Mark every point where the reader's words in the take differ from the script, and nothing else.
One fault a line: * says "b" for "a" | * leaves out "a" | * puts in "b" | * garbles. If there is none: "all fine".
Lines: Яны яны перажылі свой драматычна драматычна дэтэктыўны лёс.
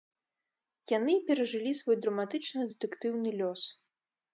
* leaves out "яны"
* leaves out "драматычна"